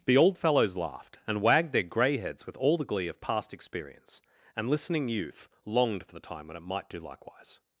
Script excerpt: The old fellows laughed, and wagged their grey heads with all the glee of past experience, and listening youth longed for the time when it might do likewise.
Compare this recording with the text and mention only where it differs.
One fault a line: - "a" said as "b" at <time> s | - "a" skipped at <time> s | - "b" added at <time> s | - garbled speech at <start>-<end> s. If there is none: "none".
none